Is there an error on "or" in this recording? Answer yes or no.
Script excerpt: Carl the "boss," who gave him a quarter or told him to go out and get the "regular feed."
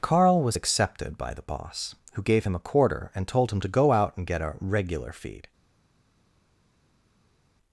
yes